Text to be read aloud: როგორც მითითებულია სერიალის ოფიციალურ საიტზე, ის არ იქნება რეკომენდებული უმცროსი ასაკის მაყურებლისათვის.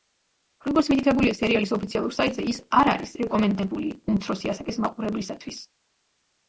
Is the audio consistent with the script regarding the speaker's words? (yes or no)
no